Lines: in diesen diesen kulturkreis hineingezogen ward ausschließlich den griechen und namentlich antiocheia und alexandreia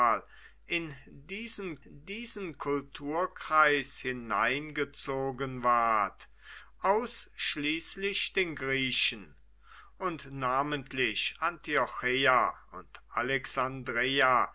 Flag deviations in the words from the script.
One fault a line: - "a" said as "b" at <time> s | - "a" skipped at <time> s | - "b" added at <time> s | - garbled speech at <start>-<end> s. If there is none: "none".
none